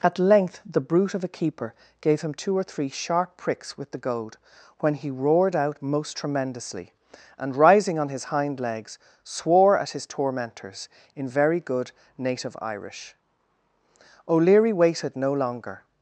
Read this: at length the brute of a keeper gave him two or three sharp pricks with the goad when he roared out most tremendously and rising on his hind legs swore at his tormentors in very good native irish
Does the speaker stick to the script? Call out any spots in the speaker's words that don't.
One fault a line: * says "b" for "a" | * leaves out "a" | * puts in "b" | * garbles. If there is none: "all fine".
* puts in "o'leary waited no longer"